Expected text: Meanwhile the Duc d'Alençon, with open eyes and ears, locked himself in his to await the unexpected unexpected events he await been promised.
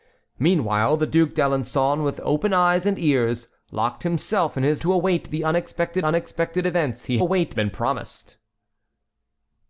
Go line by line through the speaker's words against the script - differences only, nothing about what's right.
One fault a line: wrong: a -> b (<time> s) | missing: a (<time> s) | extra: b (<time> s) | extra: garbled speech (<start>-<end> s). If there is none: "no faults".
no faults